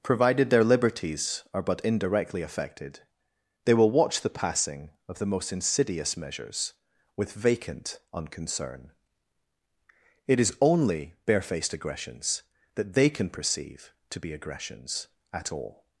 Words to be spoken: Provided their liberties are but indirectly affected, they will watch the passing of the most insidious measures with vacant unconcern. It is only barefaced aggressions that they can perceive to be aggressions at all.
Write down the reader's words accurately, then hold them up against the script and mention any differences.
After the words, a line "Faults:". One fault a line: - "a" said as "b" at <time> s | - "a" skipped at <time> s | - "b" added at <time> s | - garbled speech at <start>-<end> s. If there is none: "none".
Provided their liberties are but indirectly affected, they will watch the passing of the most insidious measures with vacant unconcern. It is only barefaced aggressions that they can perceive to be aggressions at all.
Faults:
none